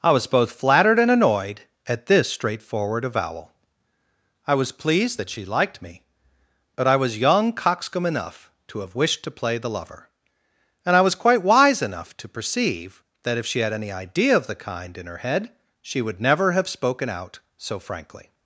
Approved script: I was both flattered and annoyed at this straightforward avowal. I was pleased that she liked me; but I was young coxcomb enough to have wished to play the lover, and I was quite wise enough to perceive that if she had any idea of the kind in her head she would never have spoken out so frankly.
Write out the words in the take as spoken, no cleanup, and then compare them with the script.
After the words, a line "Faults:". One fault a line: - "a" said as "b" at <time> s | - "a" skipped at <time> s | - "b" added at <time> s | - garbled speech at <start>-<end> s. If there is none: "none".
I was both flattered and annoyed at this straightforward avowal. I was pleased that she liked me; but I was young coxcomb enough to have wished to play the lover, and I was quite wise enough to perceive that if she had any idea of the kind in her head she would never have spoken out so frankly.
Faults:
none